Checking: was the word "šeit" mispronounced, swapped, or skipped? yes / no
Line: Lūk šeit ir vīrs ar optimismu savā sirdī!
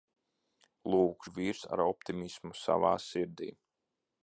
yes